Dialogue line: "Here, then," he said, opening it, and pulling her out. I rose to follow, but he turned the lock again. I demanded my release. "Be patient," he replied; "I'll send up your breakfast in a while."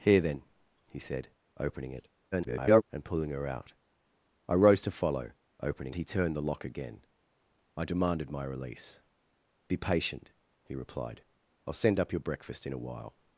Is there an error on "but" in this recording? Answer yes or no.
yes